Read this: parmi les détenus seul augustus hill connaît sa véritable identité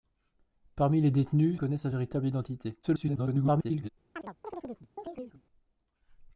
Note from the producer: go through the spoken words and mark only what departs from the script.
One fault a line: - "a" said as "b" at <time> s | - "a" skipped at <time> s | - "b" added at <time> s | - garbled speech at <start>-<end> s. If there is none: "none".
- "seul augustus hill" skipped at 1.6 s
- garbled speech at 2.8-3.9 s